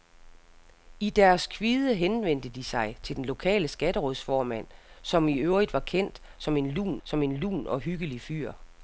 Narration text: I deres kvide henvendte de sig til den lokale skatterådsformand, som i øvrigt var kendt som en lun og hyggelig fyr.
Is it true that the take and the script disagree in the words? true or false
true